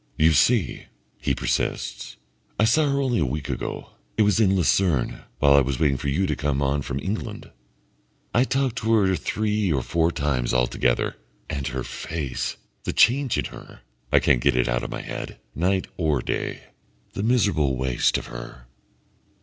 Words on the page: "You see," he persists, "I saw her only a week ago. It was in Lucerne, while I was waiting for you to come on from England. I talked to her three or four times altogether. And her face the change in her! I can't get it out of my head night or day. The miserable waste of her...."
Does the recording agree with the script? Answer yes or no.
yes